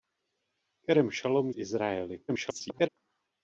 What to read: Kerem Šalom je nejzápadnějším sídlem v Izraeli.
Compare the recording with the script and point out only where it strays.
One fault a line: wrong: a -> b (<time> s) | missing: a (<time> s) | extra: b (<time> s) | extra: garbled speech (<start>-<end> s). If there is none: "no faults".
missing: je nejzápadnějším sídlem (1.5 s)
extra: garbled speech (2.3-2.9 s)